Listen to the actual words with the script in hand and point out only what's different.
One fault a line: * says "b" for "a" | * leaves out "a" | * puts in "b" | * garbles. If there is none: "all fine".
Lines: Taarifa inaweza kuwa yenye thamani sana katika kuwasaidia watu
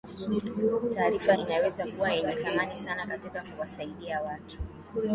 all fine